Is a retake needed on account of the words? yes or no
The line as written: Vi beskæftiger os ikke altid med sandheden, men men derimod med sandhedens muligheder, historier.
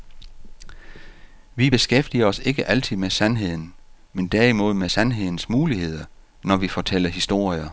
yes